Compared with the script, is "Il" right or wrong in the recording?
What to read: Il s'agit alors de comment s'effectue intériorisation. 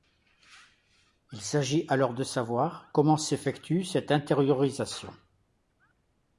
right